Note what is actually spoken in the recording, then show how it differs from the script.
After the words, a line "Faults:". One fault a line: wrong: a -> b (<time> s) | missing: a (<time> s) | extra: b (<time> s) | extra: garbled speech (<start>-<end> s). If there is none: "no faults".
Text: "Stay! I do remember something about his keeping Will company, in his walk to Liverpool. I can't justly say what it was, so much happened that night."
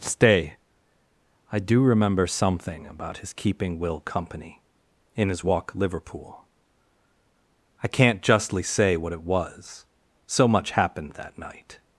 "Stay! I do remember something about his keeping Will company, in his walk Liverpool. I can't justly say what it was, so much happened that night."
Faults:
missing: to (5.8 s)